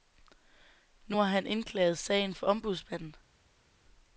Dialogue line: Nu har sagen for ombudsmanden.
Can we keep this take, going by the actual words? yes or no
no